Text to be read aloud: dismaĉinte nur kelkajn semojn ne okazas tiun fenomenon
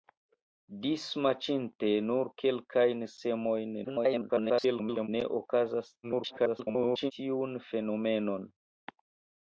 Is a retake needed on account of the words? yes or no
yes